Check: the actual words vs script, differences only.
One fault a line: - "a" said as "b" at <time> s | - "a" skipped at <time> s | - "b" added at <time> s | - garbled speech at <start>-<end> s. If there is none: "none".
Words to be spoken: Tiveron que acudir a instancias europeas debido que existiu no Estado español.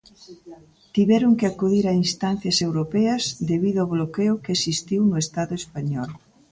- "ao bloqueo" added at 3.8 s